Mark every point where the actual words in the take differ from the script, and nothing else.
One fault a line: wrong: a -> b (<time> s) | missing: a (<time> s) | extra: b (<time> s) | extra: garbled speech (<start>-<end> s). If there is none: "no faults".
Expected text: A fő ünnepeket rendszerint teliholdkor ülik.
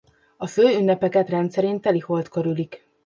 no faults